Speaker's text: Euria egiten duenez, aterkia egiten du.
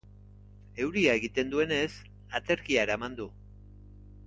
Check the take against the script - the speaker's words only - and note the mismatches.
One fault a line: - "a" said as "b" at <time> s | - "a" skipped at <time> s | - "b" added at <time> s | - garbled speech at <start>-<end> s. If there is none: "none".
- "egiten" said as "eraman" at 2.9 s